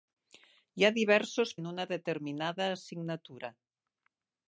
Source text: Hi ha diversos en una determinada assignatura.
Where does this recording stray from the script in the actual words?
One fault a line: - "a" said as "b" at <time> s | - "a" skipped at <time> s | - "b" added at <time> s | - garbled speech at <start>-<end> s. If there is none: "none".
none